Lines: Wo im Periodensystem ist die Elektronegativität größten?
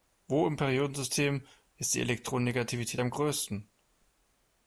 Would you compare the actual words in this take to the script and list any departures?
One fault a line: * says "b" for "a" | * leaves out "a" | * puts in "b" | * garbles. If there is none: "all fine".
* puts in "am"